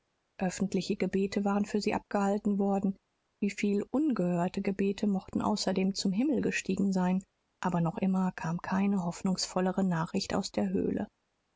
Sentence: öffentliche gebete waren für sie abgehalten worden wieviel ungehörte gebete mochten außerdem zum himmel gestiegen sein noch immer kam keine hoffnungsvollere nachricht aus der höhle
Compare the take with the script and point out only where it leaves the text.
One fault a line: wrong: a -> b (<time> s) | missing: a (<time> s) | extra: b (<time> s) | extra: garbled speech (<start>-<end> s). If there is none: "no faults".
extra: aber (7.6 s)